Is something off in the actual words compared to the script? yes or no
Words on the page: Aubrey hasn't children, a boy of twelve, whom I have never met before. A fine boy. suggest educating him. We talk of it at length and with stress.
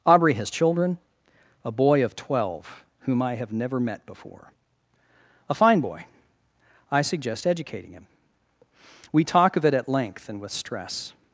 yes